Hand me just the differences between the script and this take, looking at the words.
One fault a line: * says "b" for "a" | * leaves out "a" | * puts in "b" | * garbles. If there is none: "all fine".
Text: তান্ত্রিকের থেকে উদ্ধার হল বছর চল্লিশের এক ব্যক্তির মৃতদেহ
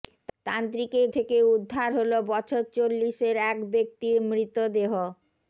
all fine